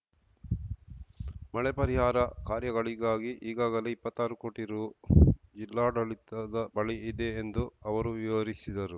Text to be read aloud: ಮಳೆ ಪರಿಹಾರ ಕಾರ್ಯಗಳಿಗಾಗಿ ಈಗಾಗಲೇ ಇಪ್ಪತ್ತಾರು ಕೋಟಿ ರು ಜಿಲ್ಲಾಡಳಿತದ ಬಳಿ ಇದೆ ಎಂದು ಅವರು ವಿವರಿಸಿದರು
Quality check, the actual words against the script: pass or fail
pass